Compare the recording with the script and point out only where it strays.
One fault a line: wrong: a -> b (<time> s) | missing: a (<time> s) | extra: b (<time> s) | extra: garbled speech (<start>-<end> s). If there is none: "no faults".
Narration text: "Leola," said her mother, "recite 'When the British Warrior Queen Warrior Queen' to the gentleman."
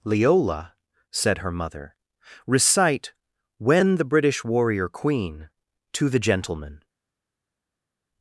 missing: Warrior Queen (5.5 s)